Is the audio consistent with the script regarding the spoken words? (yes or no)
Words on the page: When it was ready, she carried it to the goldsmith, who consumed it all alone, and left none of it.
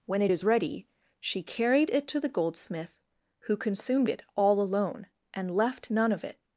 no